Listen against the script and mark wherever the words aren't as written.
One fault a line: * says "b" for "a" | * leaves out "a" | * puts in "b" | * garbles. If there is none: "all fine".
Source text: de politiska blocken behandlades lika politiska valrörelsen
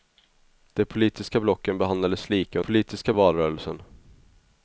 all fine